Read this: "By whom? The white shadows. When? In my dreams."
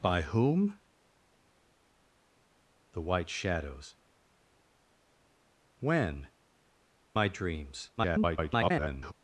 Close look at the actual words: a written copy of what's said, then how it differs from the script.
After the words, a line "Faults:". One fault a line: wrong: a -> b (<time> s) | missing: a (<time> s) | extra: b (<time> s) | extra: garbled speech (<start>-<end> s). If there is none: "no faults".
"By whom? The white shadows. When? My dreams." [garbled]
Faults:
missing: In (6.3 s)
extra: garbled speech (8.0-9.1 s)